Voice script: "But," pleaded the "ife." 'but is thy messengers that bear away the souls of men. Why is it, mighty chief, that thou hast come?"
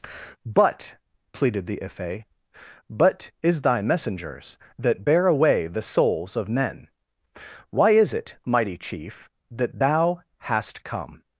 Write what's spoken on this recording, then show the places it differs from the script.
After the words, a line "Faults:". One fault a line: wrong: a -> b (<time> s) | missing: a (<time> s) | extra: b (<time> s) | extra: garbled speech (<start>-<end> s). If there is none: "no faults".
"But," pleaded the "ife." 'but is thy messengers that bear away the souls of men. Why is it, mighty chief, that thou hast come?"
Faults:
no faults